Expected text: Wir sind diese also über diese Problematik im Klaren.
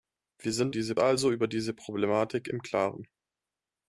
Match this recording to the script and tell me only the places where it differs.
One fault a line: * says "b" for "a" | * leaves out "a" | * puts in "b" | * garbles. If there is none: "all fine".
all fine